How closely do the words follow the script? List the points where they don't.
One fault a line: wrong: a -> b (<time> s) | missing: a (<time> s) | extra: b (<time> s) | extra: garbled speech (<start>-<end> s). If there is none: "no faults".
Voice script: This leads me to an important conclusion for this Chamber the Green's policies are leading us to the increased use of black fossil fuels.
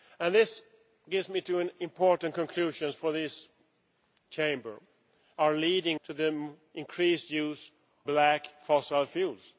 missing: the Green's policies (4.8 s)
missing: us (6.0 s)
missing: of (7.7 s)